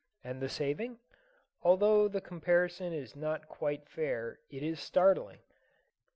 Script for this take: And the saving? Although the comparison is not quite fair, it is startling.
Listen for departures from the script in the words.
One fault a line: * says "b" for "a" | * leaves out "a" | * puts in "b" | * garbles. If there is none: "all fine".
all fine